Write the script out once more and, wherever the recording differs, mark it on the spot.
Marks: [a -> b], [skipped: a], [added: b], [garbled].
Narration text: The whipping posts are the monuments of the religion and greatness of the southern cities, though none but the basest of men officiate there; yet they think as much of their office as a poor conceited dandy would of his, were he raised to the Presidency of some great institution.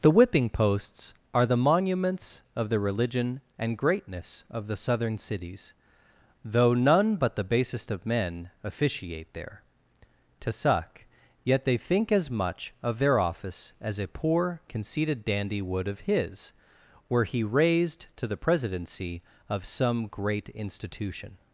The whipping posts are the monuments of the religion and greatness of the southern cities, though none but the basest of men officiate there; [added: to suck] yet they think as much of their office as a poor conceited dandy would of his, were he raised to the Presidency of some great institution.